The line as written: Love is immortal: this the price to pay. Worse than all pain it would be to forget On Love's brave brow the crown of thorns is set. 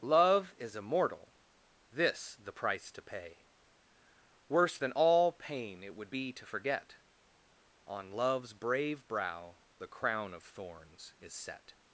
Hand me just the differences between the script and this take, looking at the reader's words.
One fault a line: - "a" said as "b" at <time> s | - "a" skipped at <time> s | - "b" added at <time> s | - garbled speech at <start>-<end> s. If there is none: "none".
none